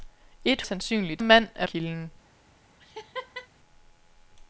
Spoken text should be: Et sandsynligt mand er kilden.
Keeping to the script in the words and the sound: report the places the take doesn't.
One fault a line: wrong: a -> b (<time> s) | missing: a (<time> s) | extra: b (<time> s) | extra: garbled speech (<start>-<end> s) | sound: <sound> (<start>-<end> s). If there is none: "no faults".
sound: laugh (2.8-3.5 s)